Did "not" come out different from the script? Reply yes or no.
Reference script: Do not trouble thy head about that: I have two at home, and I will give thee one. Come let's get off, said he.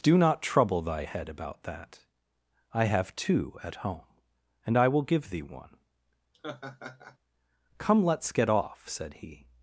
no